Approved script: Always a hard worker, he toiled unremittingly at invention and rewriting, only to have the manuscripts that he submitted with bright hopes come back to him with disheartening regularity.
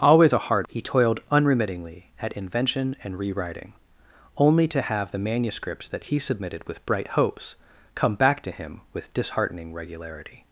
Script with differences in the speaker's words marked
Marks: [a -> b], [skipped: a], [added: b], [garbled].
Always a hard [skipped: worker,] he toiled unremittingly at invention and rewriting, only to have the manuscripts that he submitted with bright hopes come back to him with disheartening regularity.